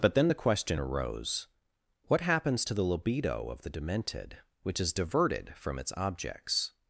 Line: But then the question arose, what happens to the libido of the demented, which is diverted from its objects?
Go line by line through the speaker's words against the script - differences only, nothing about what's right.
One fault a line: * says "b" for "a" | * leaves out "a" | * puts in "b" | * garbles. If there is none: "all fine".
all fine